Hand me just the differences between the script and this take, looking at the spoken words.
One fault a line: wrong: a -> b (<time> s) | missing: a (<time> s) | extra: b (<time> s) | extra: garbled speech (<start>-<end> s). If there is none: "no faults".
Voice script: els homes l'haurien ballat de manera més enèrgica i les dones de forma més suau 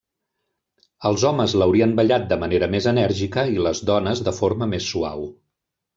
no faults